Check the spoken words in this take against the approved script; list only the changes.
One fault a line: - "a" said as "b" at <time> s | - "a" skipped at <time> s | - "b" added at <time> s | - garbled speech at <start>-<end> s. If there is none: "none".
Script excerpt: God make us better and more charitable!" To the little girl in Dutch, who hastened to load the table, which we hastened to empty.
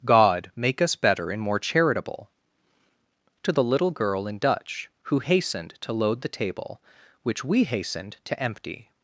none